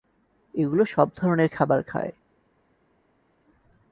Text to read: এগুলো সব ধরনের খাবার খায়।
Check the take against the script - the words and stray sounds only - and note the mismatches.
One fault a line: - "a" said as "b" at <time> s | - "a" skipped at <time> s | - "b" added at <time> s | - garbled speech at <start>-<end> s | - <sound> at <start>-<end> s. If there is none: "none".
none